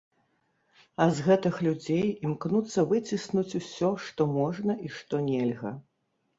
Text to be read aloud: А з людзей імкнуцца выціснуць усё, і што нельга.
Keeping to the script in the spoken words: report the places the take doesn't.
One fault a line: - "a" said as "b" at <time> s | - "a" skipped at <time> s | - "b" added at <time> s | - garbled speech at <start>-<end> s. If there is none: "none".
- "гэтых" added at 1.3 s
- "што можна" added at 4.1 s